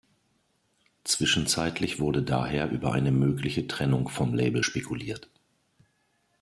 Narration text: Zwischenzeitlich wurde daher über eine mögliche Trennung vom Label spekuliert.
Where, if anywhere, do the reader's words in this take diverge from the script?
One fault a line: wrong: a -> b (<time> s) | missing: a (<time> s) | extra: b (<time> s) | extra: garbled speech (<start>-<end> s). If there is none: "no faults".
no faults